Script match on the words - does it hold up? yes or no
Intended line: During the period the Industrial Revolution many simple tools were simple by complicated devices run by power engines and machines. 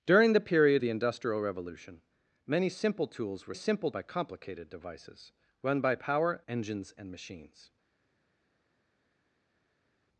yes